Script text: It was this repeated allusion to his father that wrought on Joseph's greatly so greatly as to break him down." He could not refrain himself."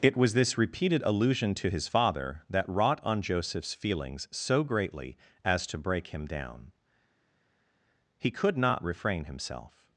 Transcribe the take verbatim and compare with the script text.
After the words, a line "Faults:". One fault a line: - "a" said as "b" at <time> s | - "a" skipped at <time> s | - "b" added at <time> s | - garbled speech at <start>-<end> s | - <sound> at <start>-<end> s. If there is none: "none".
It was this repeated allusion to his father that wrought on Joseph's feelings so greatly as to break him down." He could not refrain himself."
Faults:
- "greatly" said as "feelings" at 3.7 s